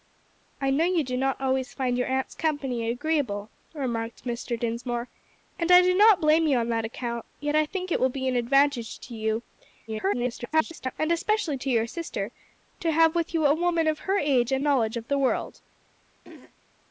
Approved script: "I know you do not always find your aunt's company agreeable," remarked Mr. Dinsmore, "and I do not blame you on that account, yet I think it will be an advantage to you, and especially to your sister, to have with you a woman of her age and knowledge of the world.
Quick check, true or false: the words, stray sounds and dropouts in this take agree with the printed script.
false